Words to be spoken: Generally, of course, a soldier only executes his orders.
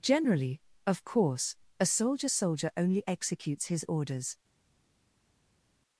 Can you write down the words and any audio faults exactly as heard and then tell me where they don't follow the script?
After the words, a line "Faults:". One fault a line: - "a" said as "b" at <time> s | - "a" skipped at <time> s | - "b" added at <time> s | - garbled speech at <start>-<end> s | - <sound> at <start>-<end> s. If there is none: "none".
Generally, of course, a soldier soldier only executes his orders.
Faults:
- "soldier" added at 2.3 s